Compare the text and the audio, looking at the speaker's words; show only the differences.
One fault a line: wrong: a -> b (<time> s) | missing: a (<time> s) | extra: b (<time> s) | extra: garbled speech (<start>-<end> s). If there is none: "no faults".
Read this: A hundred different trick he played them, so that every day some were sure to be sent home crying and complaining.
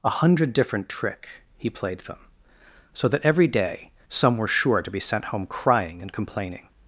no faults